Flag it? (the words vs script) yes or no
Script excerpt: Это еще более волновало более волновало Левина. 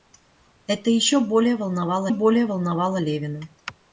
no